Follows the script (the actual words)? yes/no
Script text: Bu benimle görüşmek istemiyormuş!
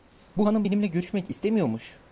no